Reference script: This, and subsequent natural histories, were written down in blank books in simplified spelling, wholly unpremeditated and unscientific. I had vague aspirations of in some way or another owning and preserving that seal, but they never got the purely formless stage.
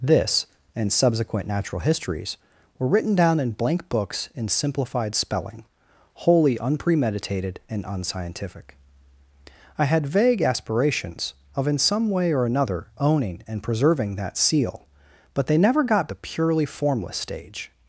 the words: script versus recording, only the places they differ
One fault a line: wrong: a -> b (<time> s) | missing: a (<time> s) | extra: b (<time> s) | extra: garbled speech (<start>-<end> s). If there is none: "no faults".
no faults